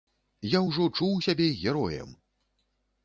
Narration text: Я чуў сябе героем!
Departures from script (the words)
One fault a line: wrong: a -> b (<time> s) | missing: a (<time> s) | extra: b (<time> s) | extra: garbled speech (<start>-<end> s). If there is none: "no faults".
extra: ўжо (0.7 s)